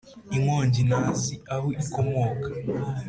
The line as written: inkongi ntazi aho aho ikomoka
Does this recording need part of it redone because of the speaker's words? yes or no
yes